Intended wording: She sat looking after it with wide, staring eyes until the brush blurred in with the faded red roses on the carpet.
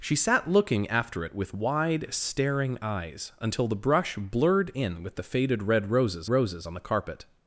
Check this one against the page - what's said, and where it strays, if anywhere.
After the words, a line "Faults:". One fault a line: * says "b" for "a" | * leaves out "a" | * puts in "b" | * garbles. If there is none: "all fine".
She sat looking after it with wide, staring eyes until the brush blurred in with the faded red roses roses on the carpet.
Faults:
* puts in "roses"